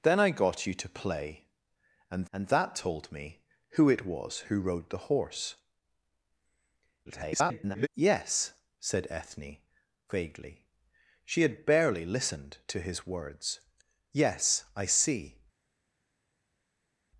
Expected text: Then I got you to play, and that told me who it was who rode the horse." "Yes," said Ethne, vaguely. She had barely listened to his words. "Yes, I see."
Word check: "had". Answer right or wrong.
right